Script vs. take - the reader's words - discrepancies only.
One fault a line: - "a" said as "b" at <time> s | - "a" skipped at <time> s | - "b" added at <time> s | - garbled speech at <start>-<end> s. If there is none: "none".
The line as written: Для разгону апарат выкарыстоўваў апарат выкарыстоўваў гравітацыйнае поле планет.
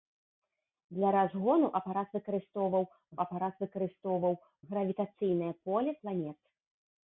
none